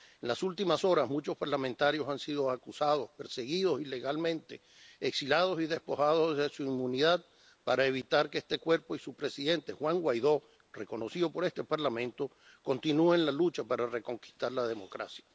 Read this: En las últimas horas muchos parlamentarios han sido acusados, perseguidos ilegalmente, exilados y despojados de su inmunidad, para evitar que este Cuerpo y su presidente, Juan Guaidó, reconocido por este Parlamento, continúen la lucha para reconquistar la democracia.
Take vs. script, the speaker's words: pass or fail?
pass